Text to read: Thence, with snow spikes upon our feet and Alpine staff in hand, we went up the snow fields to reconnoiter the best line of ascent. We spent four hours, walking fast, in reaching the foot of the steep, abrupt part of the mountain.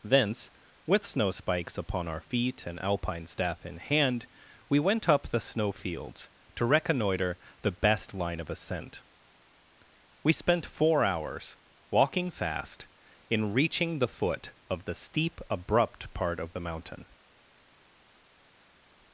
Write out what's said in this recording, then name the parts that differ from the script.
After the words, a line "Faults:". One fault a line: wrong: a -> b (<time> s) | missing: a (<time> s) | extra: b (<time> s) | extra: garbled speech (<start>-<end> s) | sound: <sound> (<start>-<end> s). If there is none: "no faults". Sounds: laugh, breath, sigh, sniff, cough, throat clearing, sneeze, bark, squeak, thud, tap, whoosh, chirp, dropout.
Thence, with snow spikes upon our feet and Alpine staff in hand, we went up the snow fields to reconnoiter the best line of ascent. We spent four hours, walking fast, in reaching the foot of the steep, abrupt part of the mountain.
Faults:
no faults